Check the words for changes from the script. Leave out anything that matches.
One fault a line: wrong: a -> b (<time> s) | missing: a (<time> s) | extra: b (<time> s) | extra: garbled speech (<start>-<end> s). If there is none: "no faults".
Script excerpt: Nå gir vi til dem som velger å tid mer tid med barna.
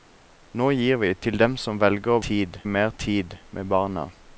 no faults